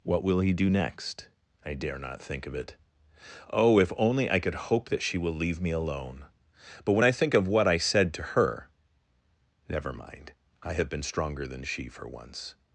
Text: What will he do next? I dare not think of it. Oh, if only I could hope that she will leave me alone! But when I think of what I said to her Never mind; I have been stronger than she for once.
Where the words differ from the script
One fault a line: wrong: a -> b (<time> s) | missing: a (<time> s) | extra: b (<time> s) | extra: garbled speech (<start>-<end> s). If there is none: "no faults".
no faults